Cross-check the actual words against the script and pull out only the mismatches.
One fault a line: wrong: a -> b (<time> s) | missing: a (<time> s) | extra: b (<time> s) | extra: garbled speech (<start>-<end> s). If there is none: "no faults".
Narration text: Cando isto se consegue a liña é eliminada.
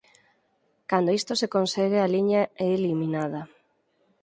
no faults